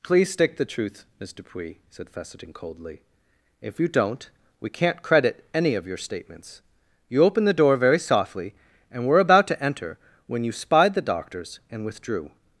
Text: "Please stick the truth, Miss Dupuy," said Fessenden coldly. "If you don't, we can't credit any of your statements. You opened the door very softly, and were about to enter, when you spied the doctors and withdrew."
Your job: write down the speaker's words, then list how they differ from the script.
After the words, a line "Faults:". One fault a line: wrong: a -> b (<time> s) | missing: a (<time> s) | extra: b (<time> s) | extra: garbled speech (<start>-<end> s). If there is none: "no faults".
"Please stick the truth, Miss Dupuy," said Fessenden coldly. "If you don't, we can't credit any of your statements. You opened the door very softly, and were about to enter, when you spied the doctors and withdrew."
Faults:
no faults